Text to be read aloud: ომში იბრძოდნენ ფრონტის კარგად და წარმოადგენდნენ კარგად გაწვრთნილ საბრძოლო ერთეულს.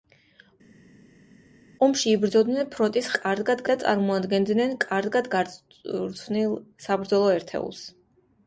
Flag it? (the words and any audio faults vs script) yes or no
no